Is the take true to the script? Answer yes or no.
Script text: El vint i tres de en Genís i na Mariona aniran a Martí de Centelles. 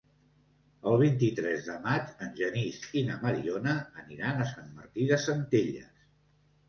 no